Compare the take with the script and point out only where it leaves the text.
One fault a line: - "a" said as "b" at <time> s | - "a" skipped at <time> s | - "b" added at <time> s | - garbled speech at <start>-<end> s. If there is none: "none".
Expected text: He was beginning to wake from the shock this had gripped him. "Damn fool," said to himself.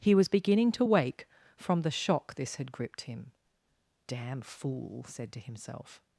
none